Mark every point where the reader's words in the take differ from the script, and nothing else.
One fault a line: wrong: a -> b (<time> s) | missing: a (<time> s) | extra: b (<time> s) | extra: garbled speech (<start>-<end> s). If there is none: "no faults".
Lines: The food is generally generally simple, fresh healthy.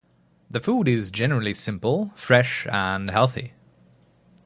missing: generally (1.5 s)
extra: and (2.7 s)